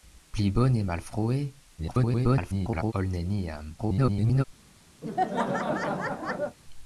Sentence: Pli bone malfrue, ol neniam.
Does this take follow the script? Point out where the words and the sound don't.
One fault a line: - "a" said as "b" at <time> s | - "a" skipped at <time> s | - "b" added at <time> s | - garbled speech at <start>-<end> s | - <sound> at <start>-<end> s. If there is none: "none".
- garbled speech at 1.8-2.9 s
- garbled speech at 3.8-4.4 s
- laugh at 5.0-6.6 s